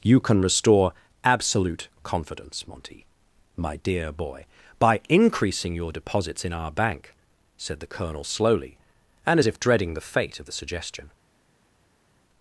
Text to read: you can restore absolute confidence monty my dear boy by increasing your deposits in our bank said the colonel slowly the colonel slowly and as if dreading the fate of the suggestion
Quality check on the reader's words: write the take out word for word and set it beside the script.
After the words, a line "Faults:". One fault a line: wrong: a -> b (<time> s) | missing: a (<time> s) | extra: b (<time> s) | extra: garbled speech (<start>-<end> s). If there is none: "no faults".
you can restore absolute confidence monty my dear boy by increasing your deposits in our bank said the colonel slowly and as if dreading the fate of the suggestion
Faults:
missing: the colonel slowly (8.8 s)